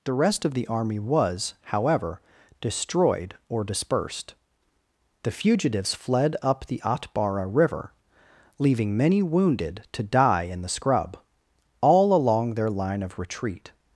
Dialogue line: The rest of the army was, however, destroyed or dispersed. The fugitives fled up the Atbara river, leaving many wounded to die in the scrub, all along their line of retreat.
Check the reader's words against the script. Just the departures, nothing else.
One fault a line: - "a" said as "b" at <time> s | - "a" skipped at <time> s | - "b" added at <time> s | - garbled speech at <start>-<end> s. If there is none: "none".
none